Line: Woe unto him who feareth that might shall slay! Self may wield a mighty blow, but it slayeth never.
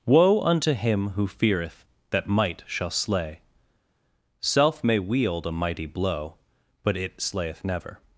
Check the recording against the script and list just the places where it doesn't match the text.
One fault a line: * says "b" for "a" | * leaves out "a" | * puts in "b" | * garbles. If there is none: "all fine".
all fine